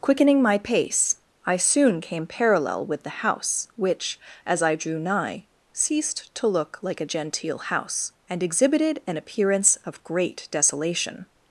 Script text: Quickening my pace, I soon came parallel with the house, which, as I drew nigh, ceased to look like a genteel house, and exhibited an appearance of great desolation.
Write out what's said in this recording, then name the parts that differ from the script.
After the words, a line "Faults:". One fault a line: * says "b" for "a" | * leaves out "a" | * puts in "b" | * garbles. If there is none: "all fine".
Quickening my pace, I soon came parallel with the house, which, as I drew nigh, ceased to look like a genteel house, and exhibited an appearance of great desolation.
Faults:
all fine